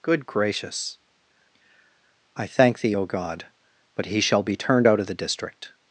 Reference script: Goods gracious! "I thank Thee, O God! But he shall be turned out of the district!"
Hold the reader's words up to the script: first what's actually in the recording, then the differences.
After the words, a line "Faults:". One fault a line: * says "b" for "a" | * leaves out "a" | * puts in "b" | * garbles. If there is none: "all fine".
Good gracious! "I thank Thee, O God! But he shall be turned out of the district!"
Faults:
* says "Good" for "Goods"